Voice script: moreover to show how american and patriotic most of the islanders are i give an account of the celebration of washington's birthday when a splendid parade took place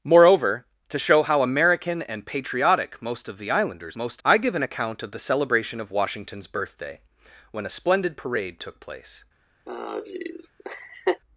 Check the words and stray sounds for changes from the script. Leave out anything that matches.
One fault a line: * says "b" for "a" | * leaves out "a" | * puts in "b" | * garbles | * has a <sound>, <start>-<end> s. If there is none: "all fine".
* says "most" for "are"
* has a laugh, 9.7-11.2 s